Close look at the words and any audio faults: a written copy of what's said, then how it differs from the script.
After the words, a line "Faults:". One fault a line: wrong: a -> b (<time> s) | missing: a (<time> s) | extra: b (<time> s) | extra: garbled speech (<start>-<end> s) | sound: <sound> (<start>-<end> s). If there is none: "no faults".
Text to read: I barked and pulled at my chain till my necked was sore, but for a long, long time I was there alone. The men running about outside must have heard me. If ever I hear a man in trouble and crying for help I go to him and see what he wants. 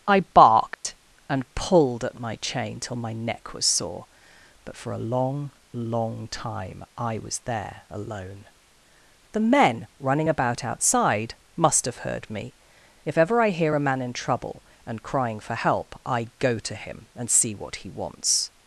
I barked and pulled at my chain till my neck was sore, but for a long, long time I was there alone. The men running about outside must have heard me. If ever I hear a man in trouble and crying for help I go to him and see what he wants.
Faults:
sound: dropout (0.7-0.8 s)
wrong: necked -> neck (3.1 s)